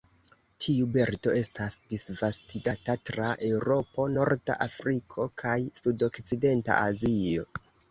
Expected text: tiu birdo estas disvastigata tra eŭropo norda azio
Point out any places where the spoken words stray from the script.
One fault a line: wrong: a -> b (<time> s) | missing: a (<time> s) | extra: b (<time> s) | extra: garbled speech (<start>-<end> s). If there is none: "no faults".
extra: afriko kaj sudokcidenta (4.7 s)